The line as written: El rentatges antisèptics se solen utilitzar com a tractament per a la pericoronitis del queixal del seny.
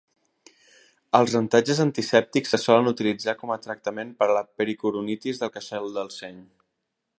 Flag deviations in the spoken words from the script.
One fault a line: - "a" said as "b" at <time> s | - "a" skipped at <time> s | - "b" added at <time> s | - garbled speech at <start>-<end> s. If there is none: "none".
- "El" said as "Els" at 1.2 s